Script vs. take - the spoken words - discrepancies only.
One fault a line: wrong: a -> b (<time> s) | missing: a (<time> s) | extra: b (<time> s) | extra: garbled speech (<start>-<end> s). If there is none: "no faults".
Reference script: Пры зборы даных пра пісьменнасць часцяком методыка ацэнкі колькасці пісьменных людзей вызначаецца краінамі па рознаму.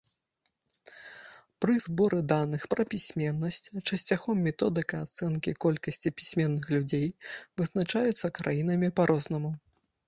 no faults